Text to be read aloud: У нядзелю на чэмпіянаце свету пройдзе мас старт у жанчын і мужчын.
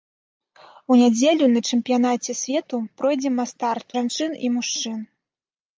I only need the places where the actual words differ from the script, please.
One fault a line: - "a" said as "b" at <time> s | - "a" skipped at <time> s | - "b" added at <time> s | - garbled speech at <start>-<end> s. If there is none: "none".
- "у" skipped at 3.9 s